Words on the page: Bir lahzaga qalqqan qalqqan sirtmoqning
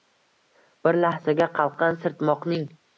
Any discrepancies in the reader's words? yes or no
yes